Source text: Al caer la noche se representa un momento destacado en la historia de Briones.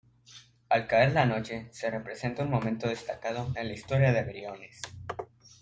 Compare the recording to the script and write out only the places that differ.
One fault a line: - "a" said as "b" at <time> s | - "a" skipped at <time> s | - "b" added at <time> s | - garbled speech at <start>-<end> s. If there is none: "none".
none